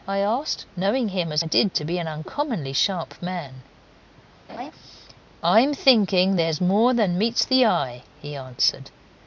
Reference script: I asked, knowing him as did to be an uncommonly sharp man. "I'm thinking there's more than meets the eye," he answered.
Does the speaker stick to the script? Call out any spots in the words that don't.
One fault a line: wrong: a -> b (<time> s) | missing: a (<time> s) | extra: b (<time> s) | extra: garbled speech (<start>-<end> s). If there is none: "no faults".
no faults